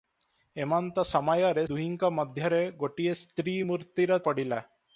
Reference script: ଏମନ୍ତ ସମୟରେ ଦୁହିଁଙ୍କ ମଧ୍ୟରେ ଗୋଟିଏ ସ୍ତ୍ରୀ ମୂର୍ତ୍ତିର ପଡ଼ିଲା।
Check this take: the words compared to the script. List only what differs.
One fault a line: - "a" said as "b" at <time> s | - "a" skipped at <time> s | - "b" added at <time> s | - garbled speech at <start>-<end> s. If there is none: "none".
none